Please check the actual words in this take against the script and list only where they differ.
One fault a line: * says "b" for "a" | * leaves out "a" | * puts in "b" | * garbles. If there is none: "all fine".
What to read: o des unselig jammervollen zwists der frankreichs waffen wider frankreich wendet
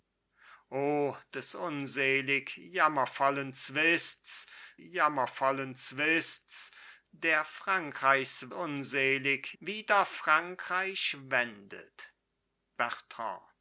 * puts in "jammervollen zwists"
* says "unselig" for "waffen"